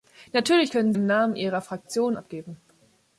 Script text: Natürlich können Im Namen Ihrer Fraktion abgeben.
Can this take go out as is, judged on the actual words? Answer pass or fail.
pass